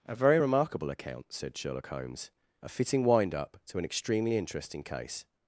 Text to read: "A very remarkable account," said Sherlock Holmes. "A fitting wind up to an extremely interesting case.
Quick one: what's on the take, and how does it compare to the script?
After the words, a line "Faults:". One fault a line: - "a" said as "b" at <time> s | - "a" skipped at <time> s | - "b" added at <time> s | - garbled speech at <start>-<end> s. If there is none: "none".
"A very remarkable account," said Sherlock Holmes. "A fitting wind up to an extremely interesting case.
Faults:
none